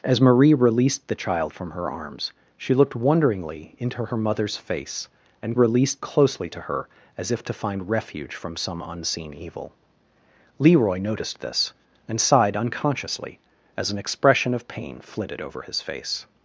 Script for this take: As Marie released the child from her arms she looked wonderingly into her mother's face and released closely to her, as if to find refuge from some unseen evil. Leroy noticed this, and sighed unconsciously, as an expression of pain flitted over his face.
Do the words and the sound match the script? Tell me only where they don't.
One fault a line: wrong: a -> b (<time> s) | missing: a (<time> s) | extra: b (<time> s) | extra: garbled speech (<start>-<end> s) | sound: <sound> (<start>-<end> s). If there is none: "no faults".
no faults